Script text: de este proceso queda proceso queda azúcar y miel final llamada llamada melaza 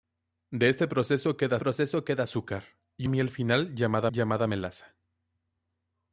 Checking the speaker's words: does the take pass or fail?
pass